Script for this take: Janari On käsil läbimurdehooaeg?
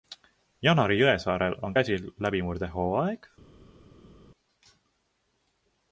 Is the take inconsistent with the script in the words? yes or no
yes